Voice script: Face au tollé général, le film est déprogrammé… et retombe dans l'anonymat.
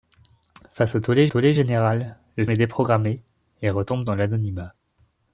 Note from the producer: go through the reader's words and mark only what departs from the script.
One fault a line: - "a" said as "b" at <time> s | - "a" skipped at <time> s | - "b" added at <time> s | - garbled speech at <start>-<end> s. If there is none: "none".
- "tollé" added at 1.3 s
- "film" skipped at 2.4 s